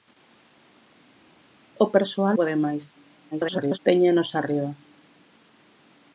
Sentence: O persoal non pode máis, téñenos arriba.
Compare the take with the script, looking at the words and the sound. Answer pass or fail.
fail